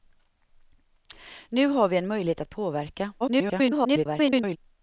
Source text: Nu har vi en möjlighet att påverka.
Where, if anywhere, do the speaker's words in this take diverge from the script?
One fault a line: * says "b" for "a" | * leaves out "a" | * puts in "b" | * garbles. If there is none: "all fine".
* garbles